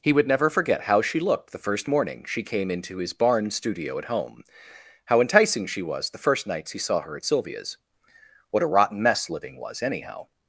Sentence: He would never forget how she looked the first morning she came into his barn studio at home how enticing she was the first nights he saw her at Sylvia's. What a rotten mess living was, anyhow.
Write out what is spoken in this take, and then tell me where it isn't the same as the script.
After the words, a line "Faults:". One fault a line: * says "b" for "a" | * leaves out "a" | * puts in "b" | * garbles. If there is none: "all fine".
He would never forget how she looked the first morning she came into his barn studio at home how enticing she was the first nights he saw her at Sylvia's. What a rotten mess living was, anyhow.
Faults:
all fine